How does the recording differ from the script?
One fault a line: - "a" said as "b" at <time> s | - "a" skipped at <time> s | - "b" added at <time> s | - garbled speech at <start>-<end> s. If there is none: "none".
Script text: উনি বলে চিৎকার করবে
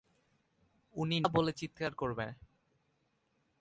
none